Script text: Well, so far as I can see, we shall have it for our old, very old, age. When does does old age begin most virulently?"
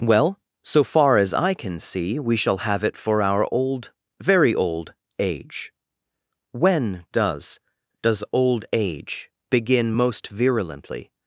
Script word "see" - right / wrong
right